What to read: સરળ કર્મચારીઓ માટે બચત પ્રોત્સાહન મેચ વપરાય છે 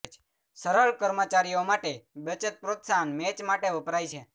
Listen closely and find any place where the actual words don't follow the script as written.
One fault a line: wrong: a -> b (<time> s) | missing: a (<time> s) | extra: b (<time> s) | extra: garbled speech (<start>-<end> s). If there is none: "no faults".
extra: માટે (3.5 s)